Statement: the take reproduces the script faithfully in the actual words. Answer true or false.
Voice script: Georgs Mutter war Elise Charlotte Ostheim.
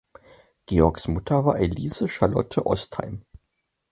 true